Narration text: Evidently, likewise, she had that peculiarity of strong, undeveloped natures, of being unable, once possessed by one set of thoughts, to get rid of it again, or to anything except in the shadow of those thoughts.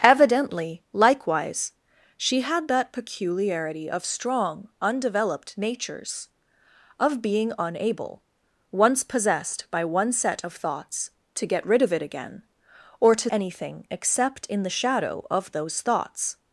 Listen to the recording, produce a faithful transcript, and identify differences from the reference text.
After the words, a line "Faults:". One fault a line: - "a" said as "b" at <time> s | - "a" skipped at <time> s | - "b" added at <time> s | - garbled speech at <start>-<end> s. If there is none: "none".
Evidently, likewise, she had that peculiarity of strong, undeveloped natures, of being unable, once possessed by one set of thoughts, to get rid of it again, or to anything except in the shadow of those thoughts.
Faults:
none